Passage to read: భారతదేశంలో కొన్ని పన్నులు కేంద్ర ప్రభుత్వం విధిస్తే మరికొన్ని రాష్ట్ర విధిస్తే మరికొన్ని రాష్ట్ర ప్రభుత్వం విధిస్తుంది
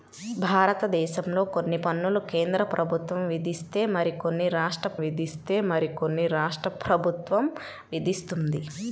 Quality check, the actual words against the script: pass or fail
pass